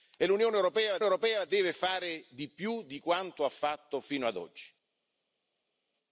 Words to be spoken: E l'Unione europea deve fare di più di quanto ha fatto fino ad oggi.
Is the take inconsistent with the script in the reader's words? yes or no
yes